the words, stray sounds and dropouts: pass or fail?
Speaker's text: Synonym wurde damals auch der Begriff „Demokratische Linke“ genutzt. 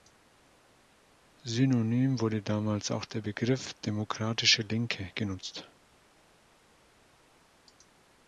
pass